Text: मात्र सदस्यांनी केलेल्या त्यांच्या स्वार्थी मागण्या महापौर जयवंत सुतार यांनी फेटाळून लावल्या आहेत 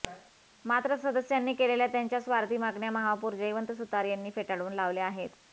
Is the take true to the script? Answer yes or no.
yes